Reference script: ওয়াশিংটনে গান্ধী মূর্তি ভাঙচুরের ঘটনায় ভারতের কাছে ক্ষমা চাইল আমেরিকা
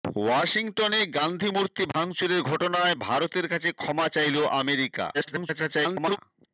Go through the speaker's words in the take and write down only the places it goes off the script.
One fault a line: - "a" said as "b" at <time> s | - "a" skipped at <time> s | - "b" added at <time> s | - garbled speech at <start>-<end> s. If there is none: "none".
- garbled speech at 5.1-6.2 s